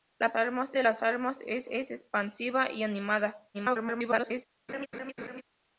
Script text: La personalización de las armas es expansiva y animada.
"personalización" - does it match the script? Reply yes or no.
no